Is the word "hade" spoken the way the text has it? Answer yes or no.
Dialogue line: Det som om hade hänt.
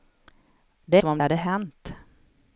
yes